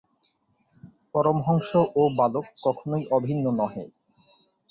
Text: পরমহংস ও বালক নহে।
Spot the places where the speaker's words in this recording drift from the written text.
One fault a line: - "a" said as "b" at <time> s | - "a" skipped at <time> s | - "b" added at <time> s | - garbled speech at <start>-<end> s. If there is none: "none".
- "কখনই অভিন্ন" added at 2.6 s